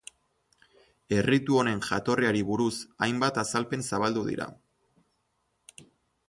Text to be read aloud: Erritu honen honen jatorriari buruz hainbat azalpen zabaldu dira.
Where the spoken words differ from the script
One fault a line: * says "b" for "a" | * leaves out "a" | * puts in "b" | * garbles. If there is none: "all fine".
* leaves out "honen"